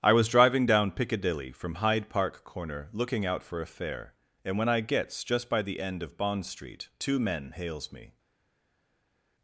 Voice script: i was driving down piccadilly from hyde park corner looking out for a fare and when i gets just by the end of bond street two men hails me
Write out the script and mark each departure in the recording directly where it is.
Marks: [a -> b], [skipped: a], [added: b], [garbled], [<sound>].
i was driving down piccadilly from hyde park corner looking out for a fare and when i gets just by the end of bond street two men hails me